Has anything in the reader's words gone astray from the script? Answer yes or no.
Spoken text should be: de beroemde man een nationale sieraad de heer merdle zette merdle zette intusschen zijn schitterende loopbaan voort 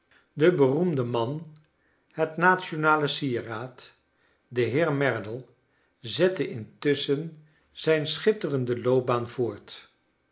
yes